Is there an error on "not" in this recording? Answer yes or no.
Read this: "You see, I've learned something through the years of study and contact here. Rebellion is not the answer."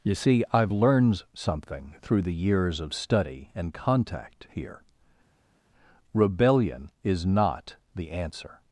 no